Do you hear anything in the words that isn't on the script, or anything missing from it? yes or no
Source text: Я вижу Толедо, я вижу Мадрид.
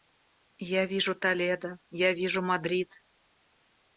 no